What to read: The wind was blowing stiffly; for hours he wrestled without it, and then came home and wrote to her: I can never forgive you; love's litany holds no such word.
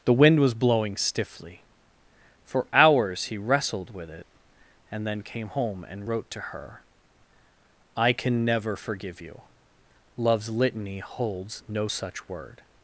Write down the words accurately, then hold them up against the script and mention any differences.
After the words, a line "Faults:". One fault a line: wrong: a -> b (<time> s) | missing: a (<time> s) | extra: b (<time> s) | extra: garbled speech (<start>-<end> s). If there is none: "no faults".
The wind was blowing stiffly; for hours he wrestled with it, and then came home and wrote to her: I can never forgive you; love's litany holds no such word.
Faults:
wrong: without -> with (3.9 s)